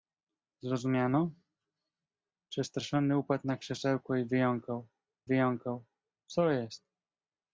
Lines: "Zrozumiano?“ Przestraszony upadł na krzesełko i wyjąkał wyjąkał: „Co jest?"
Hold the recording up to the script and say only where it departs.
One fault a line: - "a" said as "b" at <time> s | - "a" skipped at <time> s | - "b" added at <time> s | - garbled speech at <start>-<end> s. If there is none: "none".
none